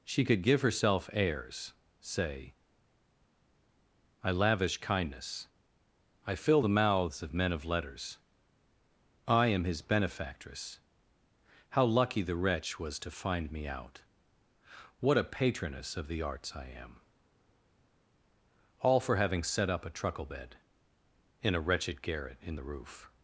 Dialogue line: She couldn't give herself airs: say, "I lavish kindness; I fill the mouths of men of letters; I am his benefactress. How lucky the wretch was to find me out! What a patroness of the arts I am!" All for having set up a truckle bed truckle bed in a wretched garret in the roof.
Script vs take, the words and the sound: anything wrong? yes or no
yes